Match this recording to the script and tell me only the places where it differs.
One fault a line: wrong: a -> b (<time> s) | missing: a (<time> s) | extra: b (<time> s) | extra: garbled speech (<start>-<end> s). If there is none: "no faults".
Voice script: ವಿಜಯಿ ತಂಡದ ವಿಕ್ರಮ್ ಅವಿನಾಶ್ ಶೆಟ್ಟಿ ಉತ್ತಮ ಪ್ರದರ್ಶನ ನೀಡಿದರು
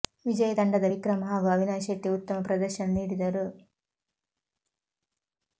extra: ಹಾಗೂ (1.2 s)